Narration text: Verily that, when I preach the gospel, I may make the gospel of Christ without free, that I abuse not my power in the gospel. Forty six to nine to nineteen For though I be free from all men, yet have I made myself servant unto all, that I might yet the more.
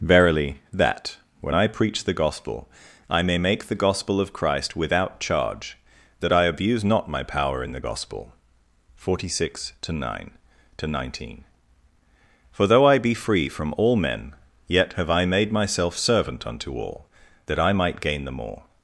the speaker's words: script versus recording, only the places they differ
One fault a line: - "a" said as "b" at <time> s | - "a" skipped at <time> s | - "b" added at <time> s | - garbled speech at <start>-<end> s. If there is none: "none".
- "free" said as "charge" at 5.2 s
- "yet" said as "gain" at 18.0 s